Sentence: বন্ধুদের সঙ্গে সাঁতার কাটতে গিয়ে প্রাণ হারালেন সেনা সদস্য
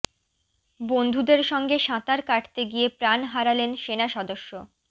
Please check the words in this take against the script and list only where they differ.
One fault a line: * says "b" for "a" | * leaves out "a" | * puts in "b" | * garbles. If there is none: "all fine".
all fine